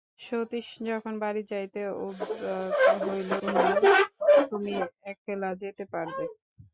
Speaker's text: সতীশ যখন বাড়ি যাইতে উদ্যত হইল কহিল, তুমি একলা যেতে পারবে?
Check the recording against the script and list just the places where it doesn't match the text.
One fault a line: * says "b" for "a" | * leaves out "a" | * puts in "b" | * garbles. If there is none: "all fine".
all fine